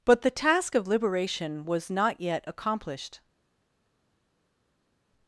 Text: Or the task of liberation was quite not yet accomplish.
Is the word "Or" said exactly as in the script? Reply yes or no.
no